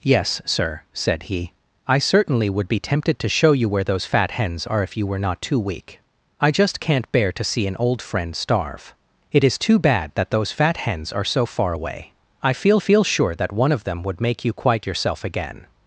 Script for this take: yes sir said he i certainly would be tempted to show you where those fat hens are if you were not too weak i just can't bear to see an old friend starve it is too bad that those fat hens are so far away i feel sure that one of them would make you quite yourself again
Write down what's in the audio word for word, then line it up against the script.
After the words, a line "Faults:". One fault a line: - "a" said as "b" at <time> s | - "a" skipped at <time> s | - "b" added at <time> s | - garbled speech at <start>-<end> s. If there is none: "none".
yes sir said he i certainly would be tempted to show you where those fat hens are if you were not too weak i just can't bear to see an old friend starve it is too bad that those fat hens are so far away i feel feel sure that one of them would make you quite yourself again
Faults:
- "feel" added at 12.8 s